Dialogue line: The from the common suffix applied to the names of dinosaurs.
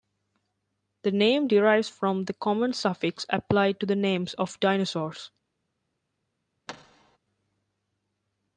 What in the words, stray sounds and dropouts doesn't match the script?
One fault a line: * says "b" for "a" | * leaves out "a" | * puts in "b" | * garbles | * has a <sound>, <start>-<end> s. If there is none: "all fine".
* puts in "name derives"
* has a thud, 6.7-7.2 s